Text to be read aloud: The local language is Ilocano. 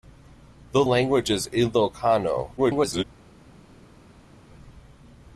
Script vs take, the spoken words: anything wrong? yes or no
yes